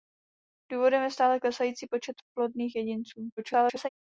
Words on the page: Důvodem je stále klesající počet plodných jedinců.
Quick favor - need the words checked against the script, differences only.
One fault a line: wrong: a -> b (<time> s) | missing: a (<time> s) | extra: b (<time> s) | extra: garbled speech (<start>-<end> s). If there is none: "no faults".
extra: garbled speech (3.4-3.9 s)